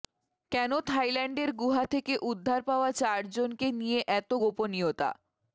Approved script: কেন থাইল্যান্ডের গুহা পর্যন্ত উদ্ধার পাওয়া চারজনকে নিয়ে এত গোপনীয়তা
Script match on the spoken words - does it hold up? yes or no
no